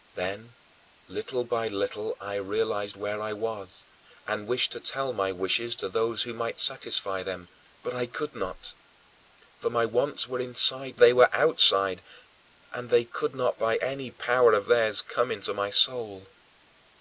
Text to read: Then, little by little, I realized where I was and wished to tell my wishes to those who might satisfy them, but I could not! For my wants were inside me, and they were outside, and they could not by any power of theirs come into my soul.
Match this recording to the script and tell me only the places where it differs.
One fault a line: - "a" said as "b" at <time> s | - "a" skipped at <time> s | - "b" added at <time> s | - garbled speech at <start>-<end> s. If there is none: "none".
- "me and" skipped at 11.0 s